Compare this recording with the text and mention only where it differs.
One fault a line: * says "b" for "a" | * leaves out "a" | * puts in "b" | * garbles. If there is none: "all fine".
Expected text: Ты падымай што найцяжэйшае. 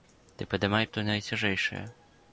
all fine